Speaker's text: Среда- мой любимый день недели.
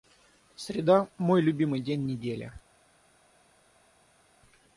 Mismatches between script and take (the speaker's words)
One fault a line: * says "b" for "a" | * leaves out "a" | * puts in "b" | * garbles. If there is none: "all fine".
all fine